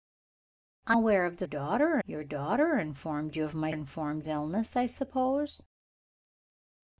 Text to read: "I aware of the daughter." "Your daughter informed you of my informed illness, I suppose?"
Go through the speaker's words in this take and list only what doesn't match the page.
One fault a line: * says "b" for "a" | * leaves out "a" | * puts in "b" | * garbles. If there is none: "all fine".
all fine